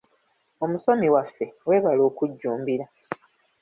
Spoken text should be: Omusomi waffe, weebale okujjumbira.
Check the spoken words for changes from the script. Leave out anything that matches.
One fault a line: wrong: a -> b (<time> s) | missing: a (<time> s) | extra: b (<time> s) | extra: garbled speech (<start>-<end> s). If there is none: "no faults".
no faults